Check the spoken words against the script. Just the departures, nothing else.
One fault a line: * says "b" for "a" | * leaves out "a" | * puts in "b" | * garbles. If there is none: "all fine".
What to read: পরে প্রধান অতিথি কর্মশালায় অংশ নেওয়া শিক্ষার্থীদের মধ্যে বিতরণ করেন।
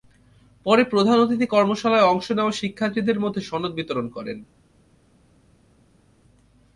* puts in "সনদ"